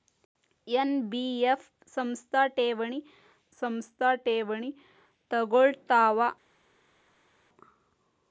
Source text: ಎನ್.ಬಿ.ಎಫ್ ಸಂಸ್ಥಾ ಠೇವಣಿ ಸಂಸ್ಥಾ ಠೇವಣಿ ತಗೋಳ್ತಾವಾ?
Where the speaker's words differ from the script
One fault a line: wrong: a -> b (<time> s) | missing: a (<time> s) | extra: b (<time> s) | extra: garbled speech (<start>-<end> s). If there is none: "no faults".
no faults